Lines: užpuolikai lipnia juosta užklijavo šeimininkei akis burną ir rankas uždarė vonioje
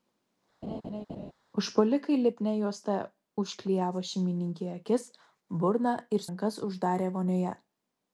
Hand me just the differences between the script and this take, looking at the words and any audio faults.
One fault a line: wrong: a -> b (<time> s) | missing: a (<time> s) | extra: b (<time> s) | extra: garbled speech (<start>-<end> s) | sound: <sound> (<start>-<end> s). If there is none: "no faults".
sound: laugh (0.6-1.3 s)